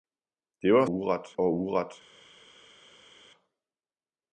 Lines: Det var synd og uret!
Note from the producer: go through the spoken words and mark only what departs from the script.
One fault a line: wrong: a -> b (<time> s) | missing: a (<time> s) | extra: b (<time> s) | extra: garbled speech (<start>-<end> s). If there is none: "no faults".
wrong: synd -> uret (0.9 s)